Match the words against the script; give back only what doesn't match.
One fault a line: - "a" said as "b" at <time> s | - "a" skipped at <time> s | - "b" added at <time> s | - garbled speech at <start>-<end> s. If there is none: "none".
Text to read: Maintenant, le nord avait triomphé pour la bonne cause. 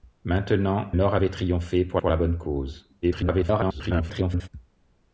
- "le" skipped at 0.9 s
- "pour" added at 2.0 s
- garbled speech at 3.0-4.5 s